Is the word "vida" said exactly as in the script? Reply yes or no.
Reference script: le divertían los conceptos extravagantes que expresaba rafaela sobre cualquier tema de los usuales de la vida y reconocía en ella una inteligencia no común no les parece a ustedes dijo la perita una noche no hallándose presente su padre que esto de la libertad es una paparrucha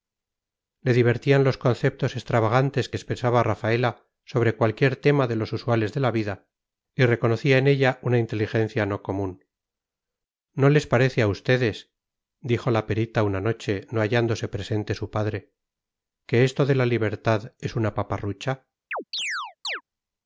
yes